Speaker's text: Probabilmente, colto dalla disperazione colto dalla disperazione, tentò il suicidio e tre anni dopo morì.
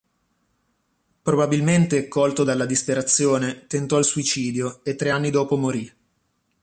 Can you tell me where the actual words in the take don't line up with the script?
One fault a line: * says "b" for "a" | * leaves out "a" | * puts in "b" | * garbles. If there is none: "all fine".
* leaves out "colto dalla disperazione"